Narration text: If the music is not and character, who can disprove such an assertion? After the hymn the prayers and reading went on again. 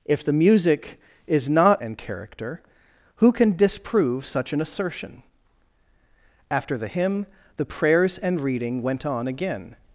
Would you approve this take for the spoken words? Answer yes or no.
yes